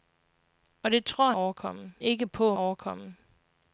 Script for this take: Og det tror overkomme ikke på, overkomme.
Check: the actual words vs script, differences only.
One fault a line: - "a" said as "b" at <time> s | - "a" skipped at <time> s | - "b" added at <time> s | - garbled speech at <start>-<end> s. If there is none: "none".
none